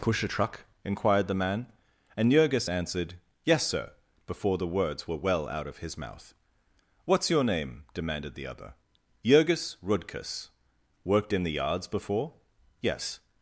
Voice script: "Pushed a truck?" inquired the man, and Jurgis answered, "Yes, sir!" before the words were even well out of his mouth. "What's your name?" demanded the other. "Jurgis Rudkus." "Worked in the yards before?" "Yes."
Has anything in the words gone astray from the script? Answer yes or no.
yes